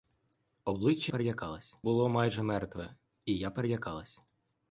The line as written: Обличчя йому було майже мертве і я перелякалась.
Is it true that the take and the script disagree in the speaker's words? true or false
true